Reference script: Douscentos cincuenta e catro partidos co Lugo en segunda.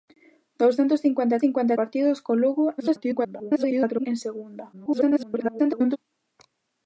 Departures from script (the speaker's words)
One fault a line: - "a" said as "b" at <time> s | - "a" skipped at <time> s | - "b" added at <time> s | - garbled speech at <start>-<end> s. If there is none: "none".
- "catro" said as "cincuenta" at 1.4 s
- garbled speech at 2.8-4.1 s
- garbled speech at 4.7-6.0 s